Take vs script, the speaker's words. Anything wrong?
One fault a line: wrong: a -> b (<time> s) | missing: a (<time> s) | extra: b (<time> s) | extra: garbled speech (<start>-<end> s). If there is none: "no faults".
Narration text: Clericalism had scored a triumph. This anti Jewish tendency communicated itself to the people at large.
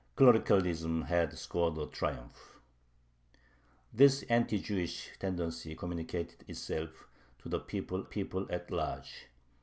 extra: people (8.0 s)